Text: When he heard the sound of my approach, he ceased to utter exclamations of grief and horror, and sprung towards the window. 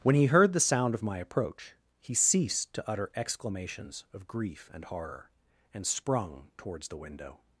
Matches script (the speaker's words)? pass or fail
pass